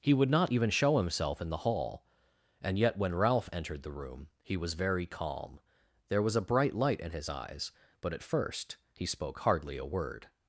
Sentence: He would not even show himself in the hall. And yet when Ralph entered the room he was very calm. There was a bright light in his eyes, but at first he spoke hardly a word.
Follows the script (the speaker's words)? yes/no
yes